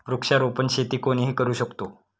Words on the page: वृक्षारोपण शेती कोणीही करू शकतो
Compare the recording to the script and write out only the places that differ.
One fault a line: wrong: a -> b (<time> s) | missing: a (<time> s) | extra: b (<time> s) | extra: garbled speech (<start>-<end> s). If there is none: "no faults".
no faults